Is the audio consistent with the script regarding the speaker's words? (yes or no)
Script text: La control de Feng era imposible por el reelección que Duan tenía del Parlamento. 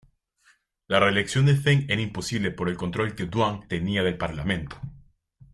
no